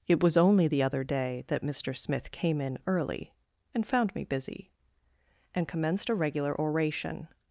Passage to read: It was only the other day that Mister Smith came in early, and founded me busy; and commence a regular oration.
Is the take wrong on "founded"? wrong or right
wrong